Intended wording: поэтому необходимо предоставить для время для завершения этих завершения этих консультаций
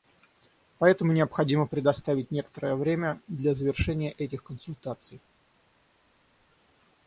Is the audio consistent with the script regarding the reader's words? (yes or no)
no